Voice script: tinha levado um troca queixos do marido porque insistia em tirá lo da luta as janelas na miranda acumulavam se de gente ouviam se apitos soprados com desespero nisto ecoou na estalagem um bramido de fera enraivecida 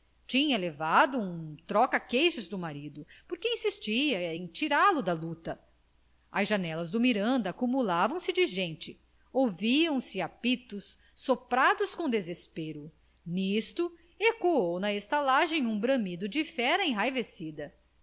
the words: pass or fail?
fail